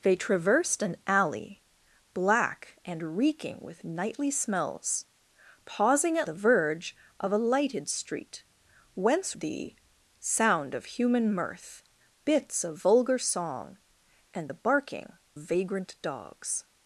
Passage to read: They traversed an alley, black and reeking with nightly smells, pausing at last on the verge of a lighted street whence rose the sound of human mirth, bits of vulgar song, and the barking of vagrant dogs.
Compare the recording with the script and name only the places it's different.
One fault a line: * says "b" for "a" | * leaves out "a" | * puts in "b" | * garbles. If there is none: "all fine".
* leaves out "last on"
* leaves out "rose"
* leaves out "of"